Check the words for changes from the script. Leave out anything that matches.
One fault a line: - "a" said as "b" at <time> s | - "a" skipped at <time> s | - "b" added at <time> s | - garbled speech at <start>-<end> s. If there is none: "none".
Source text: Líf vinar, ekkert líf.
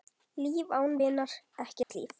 - "án" added at 0.7 s